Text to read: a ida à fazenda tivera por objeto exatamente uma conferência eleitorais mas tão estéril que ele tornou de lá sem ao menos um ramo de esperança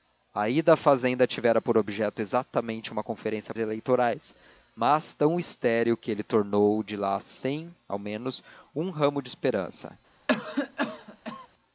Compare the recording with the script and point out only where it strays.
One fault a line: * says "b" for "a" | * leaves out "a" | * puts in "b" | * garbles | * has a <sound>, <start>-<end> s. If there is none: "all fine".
* has a cough, 10.3-11.5 s